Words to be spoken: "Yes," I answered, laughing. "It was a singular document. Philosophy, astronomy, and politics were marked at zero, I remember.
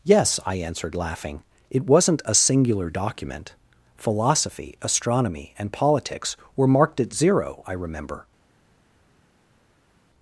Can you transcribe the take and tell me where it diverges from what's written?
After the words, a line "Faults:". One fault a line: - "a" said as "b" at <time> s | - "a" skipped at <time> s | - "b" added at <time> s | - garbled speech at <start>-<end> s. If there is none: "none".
"Yes," I answered, laughing. "It wasn't a singular document. Philosophy, astronomy, and politics were marked at zero, I remember.
Faults:
- "was" said as "wasn't" at 1.9 s